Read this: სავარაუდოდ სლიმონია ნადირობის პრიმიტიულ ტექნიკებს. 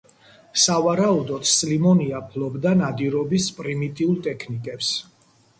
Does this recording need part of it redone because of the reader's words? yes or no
yes